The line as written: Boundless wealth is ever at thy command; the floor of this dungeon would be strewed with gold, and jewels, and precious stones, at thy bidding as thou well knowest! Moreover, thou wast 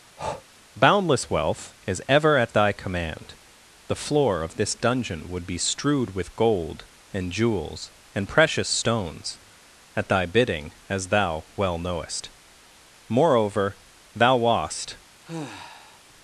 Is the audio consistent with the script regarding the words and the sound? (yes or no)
no